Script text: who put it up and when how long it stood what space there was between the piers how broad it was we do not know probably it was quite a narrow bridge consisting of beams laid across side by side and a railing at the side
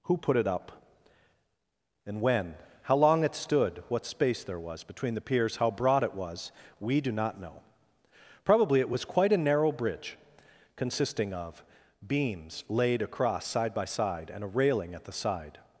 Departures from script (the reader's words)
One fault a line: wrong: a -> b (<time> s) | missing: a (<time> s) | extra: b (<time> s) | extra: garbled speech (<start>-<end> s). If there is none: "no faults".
no faults